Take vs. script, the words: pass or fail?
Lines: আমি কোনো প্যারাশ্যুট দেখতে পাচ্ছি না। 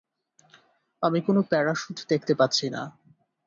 pass